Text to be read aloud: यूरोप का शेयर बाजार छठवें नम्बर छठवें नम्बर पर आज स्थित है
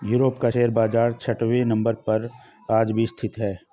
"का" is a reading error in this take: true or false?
false